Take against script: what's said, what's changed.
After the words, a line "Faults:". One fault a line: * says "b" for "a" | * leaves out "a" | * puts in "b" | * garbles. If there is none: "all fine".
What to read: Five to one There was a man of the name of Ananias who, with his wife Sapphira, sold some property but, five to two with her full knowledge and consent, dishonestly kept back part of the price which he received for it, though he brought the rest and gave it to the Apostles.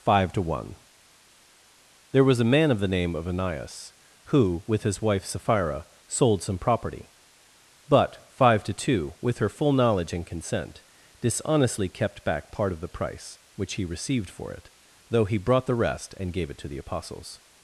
Five to one There was a man of the name of Ananias who, with his wife Sapphira, sold some property but, five to two with her full knowledge and consent, dishonestly kept back part of the price which he received for it, though he brought the rest and gave it to the Apostles.
Faults:
all fine